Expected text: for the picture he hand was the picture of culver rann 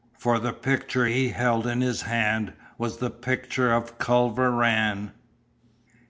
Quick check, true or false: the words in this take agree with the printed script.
false